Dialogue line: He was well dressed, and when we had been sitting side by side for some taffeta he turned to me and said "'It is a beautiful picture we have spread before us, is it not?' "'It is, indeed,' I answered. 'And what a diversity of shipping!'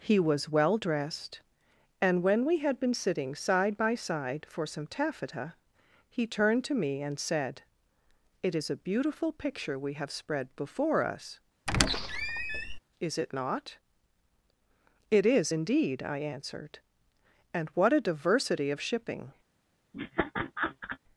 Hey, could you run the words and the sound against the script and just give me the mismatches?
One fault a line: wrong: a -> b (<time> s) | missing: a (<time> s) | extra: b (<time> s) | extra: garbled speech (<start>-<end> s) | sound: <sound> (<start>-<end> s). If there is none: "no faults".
sound: squeak (11.7-12.8 s)
sound: laugh (19.9-21.0 s)